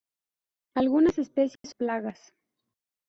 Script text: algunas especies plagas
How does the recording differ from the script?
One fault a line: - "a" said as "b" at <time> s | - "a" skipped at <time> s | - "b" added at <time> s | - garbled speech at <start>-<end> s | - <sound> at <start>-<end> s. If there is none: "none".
- dropout at 1.6-1.6 s